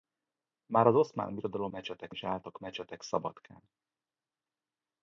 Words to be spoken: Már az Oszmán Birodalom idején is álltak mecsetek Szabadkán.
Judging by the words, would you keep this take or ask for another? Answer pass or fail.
fail